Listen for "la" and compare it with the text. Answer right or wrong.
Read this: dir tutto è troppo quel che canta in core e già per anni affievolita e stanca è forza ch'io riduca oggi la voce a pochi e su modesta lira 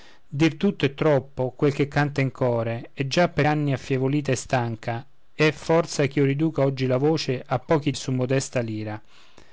right